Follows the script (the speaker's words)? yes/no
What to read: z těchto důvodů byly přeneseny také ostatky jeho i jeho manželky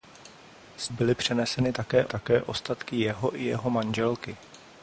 no